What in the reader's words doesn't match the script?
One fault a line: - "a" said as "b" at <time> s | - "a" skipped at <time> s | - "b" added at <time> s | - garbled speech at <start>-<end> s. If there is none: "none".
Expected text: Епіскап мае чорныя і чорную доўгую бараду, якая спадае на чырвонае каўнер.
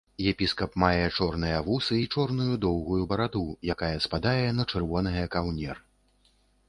- "вусы" added at 1.7 s